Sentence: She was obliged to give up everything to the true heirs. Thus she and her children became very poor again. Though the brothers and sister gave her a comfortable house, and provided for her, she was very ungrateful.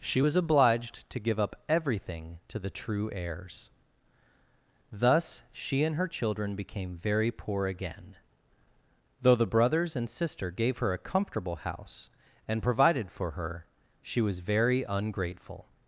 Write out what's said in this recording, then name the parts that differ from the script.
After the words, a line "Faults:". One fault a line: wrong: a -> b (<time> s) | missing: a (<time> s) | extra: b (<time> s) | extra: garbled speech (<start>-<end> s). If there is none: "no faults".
She was obliged to give up everything to the true heirs. Thus she and her children became very poor again. Though the brothers and sister gave her a comfortable house, and provided for her, she was very ungrateful.
Faults:
no faults